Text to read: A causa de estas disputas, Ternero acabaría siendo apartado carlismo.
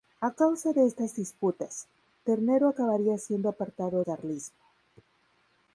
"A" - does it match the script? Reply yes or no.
yes